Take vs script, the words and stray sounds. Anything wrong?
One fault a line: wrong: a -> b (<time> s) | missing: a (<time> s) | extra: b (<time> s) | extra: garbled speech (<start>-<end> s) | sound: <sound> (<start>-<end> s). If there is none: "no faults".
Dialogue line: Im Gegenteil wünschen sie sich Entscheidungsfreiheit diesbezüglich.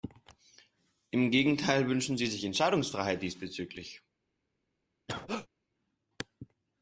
sound: cough (5.1-5.5 s)